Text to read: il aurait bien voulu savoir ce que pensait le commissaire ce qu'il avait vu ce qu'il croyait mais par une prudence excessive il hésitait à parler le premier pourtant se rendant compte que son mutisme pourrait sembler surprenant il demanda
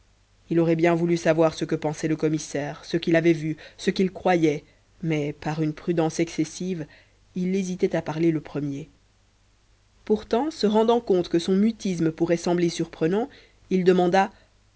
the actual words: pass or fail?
pass